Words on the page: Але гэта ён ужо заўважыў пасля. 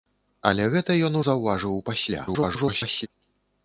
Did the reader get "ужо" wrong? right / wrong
wrong